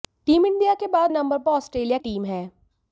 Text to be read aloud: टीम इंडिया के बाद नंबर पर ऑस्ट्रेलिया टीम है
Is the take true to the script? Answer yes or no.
yes